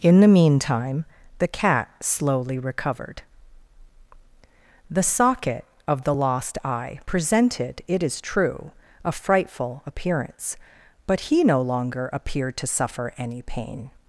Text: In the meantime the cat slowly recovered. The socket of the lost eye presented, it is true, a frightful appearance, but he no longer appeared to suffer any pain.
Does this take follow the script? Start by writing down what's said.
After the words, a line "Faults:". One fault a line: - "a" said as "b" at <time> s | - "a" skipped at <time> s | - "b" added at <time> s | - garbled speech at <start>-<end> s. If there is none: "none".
In the meantime the cat slowly recovered. The socket of the lost eye presented, it is true, a frightful appearance, but he no longer appeared to suffer any pain.
Faults:
none